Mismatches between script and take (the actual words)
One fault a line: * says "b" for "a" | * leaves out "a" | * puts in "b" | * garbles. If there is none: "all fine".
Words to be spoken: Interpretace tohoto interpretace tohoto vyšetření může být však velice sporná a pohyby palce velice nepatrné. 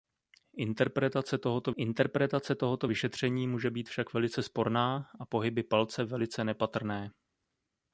all fine